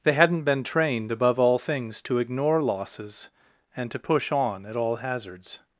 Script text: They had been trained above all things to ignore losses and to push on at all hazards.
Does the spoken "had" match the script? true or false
false